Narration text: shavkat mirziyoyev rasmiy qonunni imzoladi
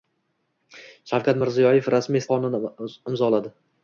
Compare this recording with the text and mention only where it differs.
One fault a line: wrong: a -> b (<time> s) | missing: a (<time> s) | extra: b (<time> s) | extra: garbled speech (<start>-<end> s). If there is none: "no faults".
no faults